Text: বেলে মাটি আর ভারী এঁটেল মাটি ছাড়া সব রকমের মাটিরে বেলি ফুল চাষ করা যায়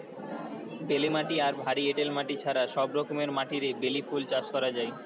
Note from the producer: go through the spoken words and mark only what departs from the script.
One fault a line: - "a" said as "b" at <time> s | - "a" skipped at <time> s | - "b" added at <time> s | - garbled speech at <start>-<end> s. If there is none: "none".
none